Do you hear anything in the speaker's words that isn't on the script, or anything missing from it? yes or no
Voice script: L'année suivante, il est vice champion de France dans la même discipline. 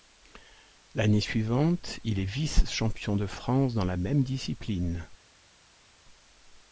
no